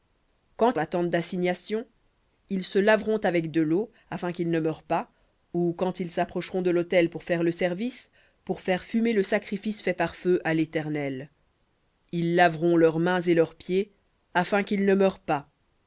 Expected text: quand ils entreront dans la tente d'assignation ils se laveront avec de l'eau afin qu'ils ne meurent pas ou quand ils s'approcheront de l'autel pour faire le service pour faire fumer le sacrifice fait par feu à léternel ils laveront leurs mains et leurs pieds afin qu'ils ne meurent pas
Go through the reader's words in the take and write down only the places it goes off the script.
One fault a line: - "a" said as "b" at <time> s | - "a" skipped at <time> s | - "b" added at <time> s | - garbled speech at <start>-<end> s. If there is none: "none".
- "ils entreront dans" skipped at 0.8 s